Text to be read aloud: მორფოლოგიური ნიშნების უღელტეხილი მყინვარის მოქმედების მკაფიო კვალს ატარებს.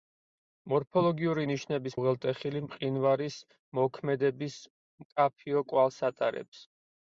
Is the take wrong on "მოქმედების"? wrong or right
right